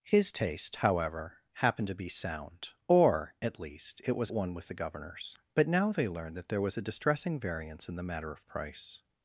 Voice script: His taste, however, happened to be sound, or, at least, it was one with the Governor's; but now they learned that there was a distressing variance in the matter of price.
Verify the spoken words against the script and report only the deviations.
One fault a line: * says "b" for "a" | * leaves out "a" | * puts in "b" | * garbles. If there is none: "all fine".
all fine